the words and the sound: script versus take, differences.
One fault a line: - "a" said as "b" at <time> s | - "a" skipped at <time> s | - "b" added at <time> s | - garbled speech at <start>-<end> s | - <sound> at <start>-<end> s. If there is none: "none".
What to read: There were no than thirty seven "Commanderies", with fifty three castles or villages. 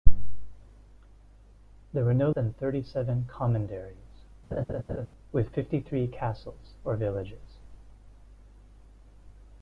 - laugh at 4.5-5.1 s